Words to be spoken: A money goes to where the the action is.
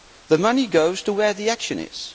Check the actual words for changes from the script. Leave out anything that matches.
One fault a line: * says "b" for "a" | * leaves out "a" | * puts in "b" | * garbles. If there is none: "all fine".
* says "The" for "A"
* leaves out "the"